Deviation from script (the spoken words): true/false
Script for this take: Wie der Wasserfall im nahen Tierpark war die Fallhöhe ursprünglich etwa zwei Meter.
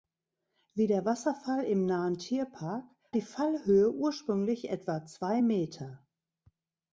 true